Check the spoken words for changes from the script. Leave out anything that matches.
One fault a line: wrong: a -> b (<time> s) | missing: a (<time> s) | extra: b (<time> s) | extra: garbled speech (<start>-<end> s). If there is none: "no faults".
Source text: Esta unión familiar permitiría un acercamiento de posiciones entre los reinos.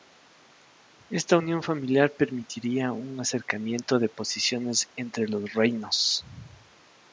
no faults